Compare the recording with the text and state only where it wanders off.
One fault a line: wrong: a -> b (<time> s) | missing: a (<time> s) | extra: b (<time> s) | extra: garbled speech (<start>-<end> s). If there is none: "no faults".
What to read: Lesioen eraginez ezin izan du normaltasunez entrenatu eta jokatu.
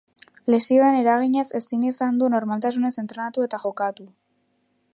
no faults